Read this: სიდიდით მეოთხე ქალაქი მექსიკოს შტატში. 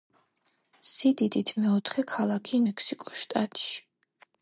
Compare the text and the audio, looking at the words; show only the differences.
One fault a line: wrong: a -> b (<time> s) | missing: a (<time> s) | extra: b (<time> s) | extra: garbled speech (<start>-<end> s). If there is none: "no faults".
no faults